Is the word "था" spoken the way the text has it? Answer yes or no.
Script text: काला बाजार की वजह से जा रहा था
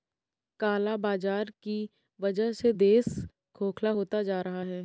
no